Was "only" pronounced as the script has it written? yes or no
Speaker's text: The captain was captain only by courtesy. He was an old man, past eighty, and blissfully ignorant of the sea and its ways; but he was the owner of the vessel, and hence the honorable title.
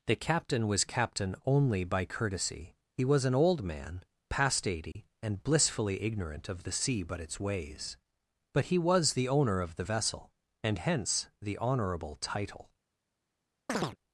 yes